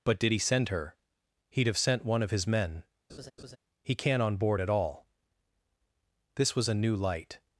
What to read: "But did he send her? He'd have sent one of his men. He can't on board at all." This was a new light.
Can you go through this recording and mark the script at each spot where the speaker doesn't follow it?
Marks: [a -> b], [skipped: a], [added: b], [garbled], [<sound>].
"But did he send her? He'd have sent one of his men. [laugh] He can't on board at all." This was a new light.